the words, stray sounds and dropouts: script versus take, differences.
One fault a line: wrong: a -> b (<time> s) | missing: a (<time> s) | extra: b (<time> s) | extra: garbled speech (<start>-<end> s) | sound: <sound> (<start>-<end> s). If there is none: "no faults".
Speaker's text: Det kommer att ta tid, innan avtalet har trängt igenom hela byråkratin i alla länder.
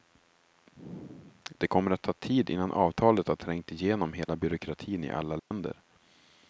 sound: dropout (4.2-4.3 s)
sound: dropout (5.4-5.5 s)